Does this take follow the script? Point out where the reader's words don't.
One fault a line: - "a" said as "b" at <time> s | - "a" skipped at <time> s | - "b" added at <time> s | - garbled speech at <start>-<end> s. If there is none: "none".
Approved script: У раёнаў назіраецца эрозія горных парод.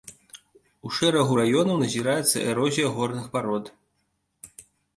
- "шэрагу" added at 1.0 s